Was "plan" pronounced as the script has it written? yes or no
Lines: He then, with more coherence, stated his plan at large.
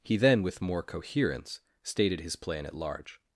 yes